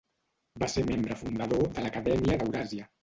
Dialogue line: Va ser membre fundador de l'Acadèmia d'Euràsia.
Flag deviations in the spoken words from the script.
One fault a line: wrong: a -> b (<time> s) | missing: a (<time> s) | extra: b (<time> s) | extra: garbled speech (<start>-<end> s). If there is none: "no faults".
no faults